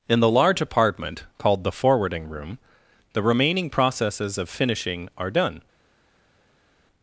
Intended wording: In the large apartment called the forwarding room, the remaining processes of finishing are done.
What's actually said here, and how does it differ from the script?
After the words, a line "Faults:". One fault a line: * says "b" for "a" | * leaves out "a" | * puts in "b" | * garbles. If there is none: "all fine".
In the large apartment called the forwarding room, the remaining processes of finishing are done.
Faults:
all fine